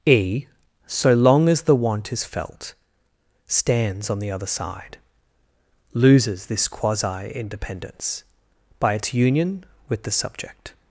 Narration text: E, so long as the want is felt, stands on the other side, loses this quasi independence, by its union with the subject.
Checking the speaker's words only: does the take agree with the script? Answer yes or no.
yes